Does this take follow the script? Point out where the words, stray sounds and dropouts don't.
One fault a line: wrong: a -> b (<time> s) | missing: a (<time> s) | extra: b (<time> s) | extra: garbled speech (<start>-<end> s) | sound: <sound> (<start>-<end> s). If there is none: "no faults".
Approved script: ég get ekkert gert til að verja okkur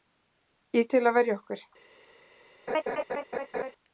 missing: get ekkert gert (0.9 s)
sound: laugh (2.7-3.7 s)